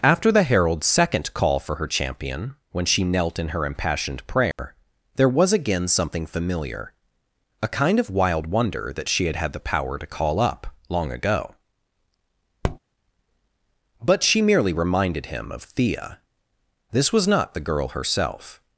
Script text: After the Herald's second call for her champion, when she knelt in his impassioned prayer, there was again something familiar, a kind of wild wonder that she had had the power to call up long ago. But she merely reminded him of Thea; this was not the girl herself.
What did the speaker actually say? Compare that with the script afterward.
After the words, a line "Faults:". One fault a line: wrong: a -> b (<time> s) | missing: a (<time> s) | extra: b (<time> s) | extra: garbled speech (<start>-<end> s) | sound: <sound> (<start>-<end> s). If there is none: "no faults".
After the Herald's second call for her champion, when she knelt in her impassioned prayer, there was again something familiar, a kind of wild wonder that she had had the power to call up long ago. But she merely reminded him of Thea; this was not the girl herself.
Faults:
wrong: his -> her (3.5 s)
sound: dropout (4.5-4.6 s)
sound: tap (12.6-12.8 s)